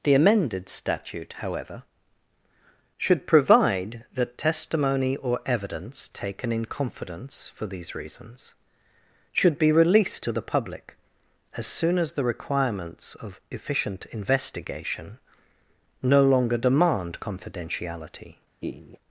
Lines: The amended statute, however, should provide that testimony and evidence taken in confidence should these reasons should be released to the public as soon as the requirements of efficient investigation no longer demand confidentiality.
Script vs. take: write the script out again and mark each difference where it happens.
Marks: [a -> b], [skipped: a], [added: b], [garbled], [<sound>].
The amended statute, however, should provide that testimony [and -> or] evidence taken in confidence [should -> for] these reasons should be released to the public as soon as the requirements of efficient investigation no longer demand confidentiality. [laugh]